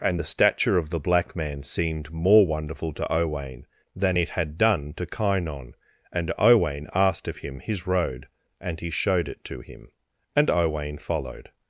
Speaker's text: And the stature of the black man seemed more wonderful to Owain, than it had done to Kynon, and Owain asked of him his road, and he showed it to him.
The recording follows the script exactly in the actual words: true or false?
false